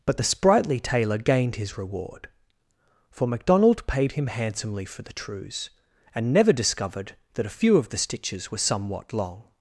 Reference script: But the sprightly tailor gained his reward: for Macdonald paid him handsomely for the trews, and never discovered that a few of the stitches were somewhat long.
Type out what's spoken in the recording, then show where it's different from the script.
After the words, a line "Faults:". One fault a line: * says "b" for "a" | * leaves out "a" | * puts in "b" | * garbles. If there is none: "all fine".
But the sprightly tailor gained his reward: for Macdonald paid him handsomely for the trews, and never discovered that a few of the stitches were somewhat long.
Faults:
all fine